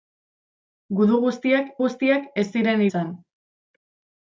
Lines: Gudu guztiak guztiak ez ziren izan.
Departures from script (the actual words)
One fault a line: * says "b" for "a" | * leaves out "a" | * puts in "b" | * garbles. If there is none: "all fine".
all fine